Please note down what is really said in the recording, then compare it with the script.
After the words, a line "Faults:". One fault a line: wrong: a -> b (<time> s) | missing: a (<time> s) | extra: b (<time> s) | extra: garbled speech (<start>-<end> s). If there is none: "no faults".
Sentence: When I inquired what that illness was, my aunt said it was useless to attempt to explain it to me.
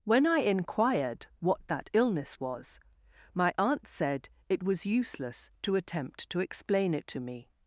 When I inquired what that illness was, my aunt said it was useless to attempt to explain it to me.
Faults:
no faults